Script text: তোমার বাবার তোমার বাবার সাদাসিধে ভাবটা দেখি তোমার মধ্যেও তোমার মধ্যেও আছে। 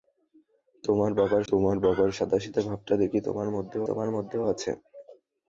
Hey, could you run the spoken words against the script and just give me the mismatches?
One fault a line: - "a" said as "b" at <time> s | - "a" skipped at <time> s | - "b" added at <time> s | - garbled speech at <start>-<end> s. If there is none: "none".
none